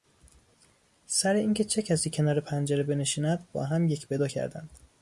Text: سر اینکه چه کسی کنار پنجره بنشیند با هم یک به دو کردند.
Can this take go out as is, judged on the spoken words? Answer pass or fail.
pass